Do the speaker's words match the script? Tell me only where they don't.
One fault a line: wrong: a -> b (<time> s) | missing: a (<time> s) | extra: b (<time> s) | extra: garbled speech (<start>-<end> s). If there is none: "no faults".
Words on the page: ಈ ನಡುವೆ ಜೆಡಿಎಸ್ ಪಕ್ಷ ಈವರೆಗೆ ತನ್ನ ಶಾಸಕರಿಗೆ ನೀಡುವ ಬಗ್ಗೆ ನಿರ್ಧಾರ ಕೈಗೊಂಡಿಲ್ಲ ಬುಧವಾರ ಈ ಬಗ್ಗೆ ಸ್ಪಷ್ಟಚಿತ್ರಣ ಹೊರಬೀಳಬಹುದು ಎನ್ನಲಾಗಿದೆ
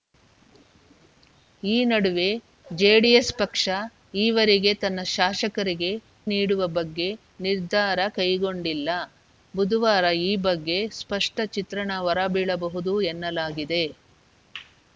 no faults